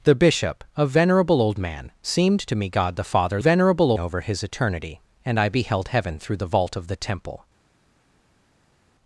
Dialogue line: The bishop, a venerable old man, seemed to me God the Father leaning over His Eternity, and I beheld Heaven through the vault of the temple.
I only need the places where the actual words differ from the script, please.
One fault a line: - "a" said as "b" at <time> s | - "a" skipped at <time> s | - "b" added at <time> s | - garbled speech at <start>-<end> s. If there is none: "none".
- "leaning" said as "venerable" at 3.4 s